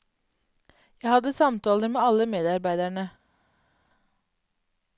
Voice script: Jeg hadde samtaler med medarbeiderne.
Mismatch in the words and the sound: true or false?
true